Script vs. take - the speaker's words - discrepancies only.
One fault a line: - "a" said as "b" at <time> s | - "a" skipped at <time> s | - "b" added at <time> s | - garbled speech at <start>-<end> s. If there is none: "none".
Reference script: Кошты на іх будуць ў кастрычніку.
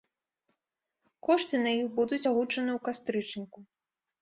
- "агучаны" added at 2.3 s